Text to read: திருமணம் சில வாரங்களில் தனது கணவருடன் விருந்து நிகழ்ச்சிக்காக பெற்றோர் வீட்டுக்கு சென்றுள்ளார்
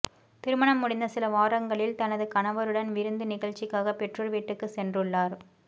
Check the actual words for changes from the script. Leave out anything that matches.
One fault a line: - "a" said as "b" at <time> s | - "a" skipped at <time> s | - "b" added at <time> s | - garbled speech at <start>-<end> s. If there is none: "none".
- "முடிந்த" added at 0.8 s